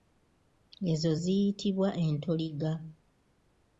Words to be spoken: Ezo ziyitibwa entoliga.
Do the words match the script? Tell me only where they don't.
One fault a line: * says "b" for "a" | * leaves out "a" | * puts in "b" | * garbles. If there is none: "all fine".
all fine